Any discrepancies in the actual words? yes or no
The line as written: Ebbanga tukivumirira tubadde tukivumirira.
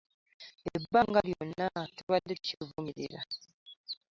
yes